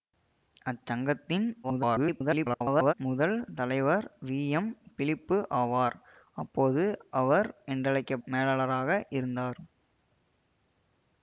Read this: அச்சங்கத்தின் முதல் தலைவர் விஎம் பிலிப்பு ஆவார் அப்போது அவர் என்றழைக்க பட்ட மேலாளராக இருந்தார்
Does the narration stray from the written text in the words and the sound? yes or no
yes